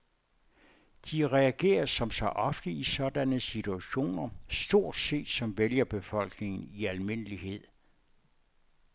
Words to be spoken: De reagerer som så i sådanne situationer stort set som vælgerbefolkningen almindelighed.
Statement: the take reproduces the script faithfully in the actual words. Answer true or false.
false